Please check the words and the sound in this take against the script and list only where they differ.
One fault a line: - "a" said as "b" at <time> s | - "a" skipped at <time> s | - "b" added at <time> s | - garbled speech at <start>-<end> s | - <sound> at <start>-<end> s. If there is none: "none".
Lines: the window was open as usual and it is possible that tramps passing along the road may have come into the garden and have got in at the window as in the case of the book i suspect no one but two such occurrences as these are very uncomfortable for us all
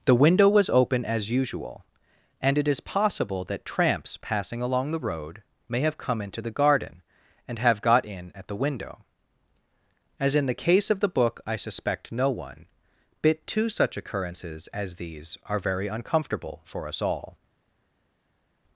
- "but" said as "bit" at 13.2 s